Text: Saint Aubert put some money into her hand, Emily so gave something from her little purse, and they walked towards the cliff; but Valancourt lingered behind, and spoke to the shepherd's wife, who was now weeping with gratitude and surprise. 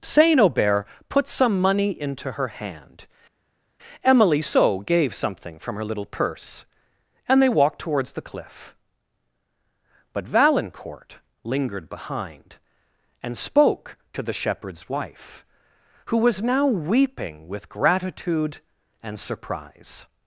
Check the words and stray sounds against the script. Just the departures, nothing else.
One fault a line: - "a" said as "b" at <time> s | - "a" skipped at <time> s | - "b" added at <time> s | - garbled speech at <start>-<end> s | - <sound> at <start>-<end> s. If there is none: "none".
none